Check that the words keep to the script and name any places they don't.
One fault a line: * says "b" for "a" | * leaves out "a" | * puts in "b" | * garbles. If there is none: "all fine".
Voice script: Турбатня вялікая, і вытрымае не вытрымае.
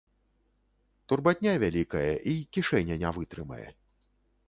* says "кішэня" for "вытрымае"